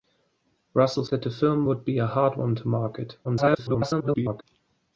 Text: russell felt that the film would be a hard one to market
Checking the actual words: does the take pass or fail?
fail